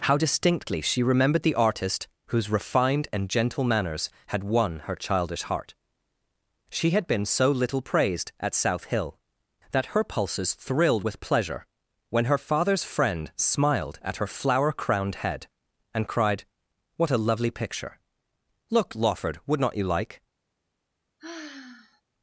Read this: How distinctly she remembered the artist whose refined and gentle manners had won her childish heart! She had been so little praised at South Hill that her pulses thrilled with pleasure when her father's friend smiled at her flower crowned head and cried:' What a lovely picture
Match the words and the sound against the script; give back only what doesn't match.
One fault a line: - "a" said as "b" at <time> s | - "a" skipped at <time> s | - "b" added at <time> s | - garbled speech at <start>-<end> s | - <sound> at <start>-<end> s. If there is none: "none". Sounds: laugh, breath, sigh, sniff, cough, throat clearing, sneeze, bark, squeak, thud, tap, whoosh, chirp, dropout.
- "Look Lawford would not you like" added at 18.7 s
- sigh at 21.2-22.0 s